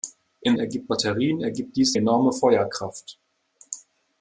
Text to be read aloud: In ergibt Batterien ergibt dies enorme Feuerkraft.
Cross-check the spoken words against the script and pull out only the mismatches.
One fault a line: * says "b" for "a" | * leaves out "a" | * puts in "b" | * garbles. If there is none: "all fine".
all fine